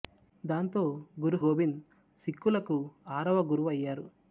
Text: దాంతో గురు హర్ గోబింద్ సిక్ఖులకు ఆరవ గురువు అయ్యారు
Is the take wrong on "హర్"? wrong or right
wrong